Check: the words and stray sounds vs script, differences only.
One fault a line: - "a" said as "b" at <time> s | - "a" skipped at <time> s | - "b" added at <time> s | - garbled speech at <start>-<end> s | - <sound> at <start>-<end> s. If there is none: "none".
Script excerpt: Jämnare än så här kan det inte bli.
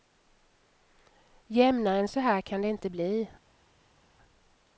none